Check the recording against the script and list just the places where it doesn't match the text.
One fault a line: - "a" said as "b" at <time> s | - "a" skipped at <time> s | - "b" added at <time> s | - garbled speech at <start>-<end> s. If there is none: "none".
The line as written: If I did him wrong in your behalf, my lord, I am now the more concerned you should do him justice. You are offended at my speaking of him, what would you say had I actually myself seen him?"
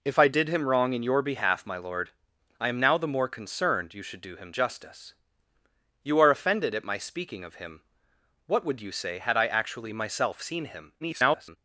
- garbled speech at 11.0-11.6 s